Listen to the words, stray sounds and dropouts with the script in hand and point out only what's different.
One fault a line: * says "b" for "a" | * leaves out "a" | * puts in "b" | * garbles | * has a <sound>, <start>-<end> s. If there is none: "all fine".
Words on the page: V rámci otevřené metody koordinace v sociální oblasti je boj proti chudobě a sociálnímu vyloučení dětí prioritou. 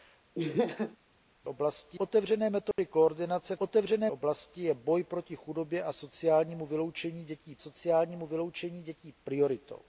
* has a laugh, 0.3-1.0 s
* says "oblasti" for "rámci"
* has a dropout, 2.7-2.8 s
* says "otevřené" for "sociální"
* puts in "sociálnímu vyloučení dětí"